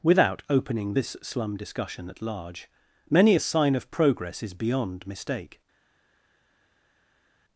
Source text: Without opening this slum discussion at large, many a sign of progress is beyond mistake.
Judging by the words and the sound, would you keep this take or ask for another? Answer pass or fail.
pass